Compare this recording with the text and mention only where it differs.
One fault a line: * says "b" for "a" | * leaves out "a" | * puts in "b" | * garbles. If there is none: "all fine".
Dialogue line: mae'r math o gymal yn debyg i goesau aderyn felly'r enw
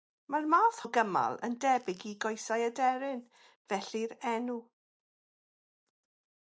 all fine